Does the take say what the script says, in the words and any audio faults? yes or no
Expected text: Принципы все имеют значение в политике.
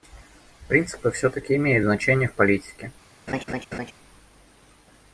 no